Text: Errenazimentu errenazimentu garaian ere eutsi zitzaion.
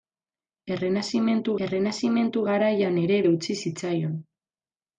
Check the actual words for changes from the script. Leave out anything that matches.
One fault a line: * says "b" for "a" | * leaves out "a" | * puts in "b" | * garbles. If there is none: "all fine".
all fine